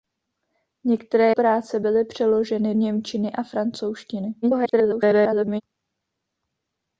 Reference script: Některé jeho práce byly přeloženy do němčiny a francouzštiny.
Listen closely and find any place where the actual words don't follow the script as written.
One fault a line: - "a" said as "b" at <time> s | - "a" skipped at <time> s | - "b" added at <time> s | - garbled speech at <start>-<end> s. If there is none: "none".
- "jeho" skipped at 1.3 s
- "do" skipped at 2.7 s
- garbled speech at 4.4-5.6 s